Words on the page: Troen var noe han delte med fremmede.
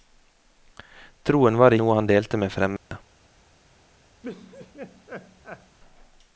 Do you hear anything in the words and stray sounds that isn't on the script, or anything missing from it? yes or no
yes